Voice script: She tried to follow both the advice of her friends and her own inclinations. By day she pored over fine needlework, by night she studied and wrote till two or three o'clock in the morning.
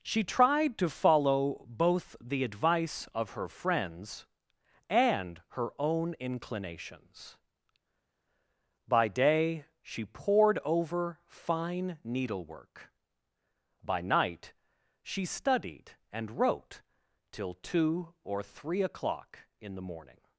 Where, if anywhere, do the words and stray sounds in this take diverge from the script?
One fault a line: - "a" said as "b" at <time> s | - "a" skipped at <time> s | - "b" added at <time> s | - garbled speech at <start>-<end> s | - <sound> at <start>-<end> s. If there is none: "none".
none